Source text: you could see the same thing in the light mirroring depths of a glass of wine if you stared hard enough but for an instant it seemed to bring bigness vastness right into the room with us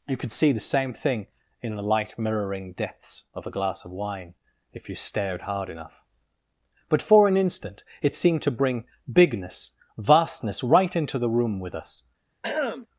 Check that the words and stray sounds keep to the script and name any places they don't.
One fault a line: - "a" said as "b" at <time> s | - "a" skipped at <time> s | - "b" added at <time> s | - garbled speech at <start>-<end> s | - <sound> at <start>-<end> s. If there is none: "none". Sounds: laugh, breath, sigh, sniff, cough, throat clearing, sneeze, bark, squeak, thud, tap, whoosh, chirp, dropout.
- throat clearing at 12.4-12.9 s